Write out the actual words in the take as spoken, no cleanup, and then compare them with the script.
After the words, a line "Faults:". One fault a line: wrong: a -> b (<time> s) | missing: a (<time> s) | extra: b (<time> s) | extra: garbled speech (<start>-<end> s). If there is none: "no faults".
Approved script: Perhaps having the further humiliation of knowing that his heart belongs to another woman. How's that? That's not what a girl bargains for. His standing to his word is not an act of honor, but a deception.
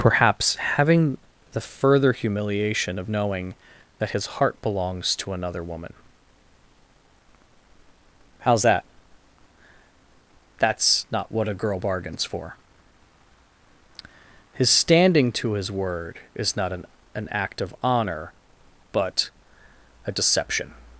Perhaps having the further humiliation of knowing that his heart belongs to another woman. How's that? That's not what a girl bargains for. His standing to his word is not an an act of honor, but a deception.
Faults:
extra: an (17.2 s)